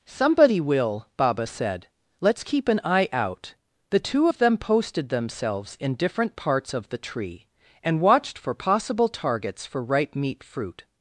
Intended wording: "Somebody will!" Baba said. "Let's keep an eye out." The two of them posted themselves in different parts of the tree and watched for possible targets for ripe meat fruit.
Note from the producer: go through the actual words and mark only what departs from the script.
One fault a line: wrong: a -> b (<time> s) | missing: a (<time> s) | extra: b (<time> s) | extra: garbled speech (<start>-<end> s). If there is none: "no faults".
no faults